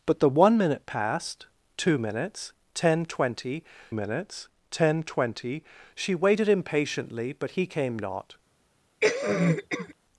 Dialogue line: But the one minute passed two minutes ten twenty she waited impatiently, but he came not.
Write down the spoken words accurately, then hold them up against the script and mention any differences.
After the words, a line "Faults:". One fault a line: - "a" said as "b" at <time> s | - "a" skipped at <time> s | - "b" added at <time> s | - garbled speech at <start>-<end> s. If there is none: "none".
But the one minute passed two minutes ten twenty minutes ten twenty she waited impatiently, but he came not.
Faults:
- "minutes ten twenty" added at 3.9 s